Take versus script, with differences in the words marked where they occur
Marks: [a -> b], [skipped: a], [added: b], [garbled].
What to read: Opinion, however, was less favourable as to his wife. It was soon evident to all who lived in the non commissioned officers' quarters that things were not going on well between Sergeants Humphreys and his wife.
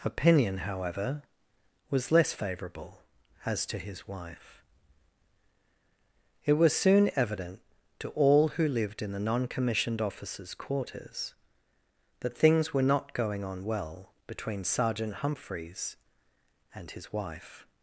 Opinion, however, was less favourable as to his wife. It was soon evident to all who lived in the non commissioned officers' quarters that things were not going on well between [Sergeants -> Sergeant] Humphreys and his wife.